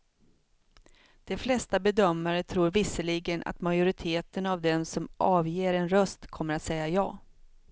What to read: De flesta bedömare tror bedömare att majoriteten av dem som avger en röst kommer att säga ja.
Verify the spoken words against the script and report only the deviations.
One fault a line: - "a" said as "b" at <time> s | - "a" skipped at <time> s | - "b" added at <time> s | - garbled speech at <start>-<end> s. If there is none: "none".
- "bedömare" said as "visserligen" at 2.7 s